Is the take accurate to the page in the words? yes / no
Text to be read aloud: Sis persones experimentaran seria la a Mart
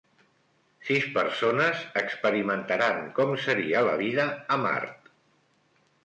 no